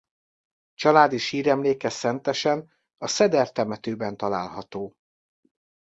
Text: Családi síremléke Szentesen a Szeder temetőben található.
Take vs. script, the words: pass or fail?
pass